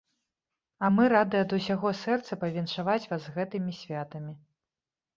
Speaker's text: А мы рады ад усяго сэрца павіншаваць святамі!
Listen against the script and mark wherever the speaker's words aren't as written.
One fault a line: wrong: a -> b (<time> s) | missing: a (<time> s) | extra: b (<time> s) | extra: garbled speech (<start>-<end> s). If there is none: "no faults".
extra: вас з гэтымі (3.1 s)